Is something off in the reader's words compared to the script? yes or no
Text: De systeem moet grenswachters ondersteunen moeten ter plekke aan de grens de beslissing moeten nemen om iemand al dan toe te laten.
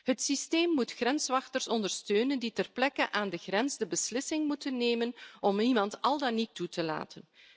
yes